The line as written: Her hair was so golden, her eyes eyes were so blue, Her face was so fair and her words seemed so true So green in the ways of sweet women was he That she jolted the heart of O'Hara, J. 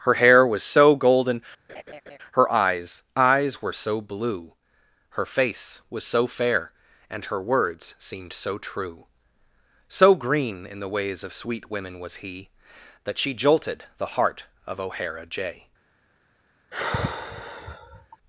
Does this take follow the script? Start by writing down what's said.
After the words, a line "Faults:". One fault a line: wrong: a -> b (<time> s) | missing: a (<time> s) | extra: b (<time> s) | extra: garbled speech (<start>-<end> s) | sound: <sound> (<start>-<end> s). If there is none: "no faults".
Her hair was so golden, her eyes eyes were so blue, Her face was so fair and her words seemed so true So green in the ways of sweet women was he That she jolted the heart of O'Hara, J.
Faults:
sound: laugh (1.7-2.2 s)
sound: sigh (16.7-18.2 s)